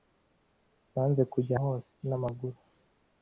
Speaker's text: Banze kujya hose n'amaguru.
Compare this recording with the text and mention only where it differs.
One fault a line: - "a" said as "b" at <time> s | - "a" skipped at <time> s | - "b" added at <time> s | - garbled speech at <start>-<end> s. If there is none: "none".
none